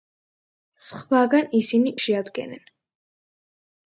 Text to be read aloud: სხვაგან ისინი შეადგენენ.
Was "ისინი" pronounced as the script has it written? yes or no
yes